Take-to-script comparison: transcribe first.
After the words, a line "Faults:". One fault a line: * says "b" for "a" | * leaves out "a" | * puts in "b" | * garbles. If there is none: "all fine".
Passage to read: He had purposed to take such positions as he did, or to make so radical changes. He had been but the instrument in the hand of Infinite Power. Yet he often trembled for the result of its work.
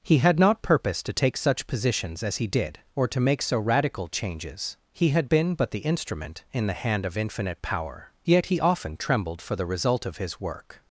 He had not purposed to take such positions as he did, or to make so radical changes. He had been but the instrument in the hand of Infinite Power. Yet he often trembled for the result of his work.
Faults:
* puts in "not"
* says "his" for "its"